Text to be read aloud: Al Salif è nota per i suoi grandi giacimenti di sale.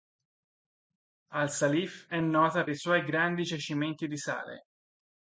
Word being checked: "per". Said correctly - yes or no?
no